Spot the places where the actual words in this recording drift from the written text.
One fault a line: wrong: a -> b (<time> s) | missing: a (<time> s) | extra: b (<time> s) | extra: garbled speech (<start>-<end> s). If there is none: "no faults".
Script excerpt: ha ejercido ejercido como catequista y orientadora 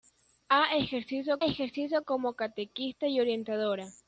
no faults